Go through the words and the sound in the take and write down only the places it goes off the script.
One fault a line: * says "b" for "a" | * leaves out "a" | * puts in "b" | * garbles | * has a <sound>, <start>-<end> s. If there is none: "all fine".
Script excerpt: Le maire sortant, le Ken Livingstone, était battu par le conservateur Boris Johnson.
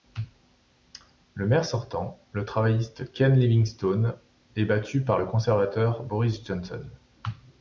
* puts in "travailliste"
* says "est" for "était"